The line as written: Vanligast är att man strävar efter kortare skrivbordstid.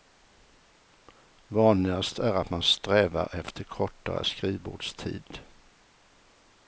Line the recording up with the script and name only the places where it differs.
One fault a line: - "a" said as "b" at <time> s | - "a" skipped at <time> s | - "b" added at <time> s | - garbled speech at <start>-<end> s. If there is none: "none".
none